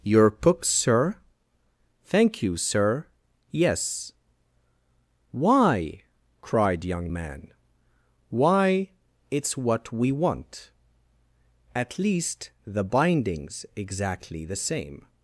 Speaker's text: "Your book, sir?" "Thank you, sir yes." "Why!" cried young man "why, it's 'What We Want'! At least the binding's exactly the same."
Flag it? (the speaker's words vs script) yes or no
no